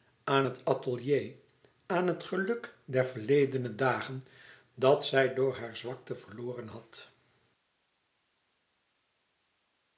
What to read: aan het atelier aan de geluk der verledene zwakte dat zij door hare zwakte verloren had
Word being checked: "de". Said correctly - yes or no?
no